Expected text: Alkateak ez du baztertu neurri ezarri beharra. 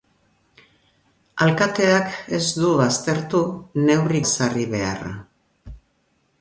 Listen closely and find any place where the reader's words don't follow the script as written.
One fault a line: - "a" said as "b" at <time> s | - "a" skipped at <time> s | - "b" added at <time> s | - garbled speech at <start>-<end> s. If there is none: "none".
none